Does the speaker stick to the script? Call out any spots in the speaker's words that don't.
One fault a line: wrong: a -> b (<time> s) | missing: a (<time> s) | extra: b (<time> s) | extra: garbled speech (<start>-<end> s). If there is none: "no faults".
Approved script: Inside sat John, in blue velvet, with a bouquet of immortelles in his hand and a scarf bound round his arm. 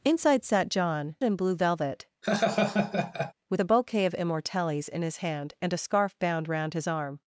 no faults